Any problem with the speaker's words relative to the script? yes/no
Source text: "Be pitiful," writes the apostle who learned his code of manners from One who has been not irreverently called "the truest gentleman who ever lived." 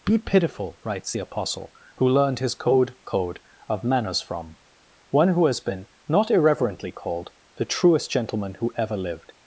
yes